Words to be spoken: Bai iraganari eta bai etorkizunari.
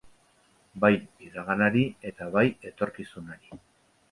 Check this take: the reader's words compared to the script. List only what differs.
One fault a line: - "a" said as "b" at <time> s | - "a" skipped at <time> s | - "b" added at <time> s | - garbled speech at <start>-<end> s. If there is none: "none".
none